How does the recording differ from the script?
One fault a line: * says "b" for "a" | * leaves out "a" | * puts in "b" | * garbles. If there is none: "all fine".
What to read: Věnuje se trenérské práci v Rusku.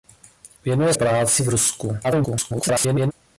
* leaves out "se trenérské"
* garbles